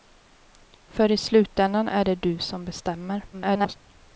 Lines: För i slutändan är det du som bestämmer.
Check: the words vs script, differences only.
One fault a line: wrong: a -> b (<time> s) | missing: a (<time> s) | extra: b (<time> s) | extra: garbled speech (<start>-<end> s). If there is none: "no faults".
extra: garbled speech (3.3-3.8 s)